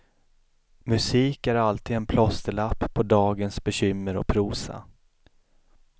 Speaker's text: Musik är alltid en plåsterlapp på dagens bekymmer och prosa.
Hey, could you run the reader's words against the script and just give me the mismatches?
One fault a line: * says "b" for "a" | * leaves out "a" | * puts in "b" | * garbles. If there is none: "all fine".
all fine